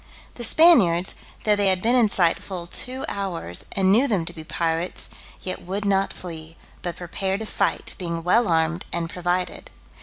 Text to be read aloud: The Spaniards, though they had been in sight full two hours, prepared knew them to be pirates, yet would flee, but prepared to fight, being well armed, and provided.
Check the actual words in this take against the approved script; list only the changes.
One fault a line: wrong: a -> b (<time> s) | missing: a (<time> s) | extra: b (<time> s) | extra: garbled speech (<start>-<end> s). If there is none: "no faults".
wrong: prepared -> and (3.7 s)
extra: not (5.8 s)